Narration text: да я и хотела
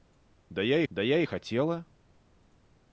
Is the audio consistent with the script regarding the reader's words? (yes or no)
no